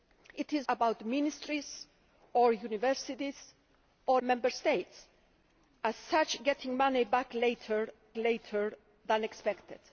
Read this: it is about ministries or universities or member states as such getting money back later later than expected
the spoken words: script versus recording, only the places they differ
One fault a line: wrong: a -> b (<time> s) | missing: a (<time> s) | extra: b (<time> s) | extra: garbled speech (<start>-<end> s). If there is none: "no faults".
no faults